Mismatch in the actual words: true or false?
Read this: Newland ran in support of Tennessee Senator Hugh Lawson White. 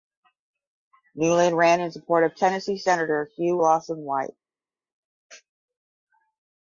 false